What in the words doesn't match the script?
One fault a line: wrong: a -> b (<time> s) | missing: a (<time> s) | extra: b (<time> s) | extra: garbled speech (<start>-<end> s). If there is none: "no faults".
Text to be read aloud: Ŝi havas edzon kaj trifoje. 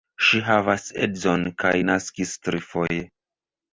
extra: naskis (1.9 s)